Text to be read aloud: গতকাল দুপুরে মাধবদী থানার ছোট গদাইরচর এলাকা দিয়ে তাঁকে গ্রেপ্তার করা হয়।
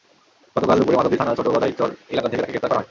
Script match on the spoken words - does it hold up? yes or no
no